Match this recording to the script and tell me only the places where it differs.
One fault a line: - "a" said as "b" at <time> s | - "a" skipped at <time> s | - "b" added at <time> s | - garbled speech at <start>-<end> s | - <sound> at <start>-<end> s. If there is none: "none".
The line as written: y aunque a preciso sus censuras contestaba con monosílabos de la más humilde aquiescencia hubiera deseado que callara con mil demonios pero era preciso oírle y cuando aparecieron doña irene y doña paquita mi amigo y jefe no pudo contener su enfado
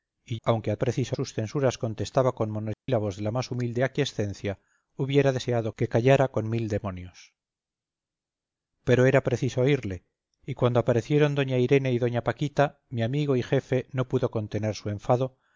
- dropout at 2.7-2.9 s